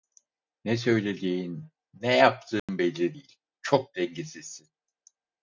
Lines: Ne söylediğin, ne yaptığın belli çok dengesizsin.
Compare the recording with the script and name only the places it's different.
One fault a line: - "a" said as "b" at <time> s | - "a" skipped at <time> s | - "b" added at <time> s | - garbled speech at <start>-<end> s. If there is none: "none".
- "değil" added at 3.1 s